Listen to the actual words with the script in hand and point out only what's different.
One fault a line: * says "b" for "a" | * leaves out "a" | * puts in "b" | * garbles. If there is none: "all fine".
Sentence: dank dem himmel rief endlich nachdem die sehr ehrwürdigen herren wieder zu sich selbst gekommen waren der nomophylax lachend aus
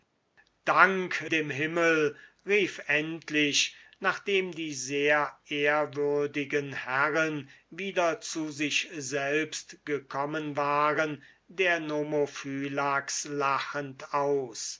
all fine